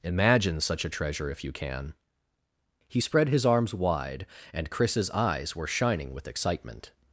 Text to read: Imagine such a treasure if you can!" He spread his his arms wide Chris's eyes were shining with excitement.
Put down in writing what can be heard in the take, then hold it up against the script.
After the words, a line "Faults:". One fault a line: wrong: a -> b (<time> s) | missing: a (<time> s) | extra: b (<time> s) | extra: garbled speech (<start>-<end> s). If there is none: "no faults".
Imagine such a treasure if you can!" He spread his arms wide and Chris's eyes were shining with excitement.
Faults:
missing: his (3.4 s)
extra: and (4.5 s)